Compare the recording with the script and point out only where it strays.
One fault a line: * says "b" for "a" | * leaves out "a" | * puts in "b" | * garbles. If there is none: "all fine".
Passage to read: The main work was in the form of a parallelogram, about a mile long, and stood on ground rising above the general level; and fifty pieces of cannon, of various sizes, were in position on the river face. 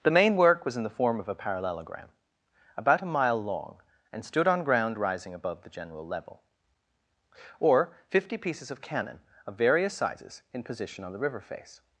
* says "or" for "and"
* leaves out "were"